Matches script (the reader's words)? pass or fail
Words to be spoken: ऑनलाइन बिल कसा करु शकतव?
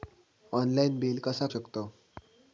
fail